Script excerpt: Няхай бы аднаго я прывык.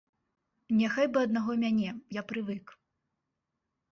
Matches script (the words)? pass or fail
fail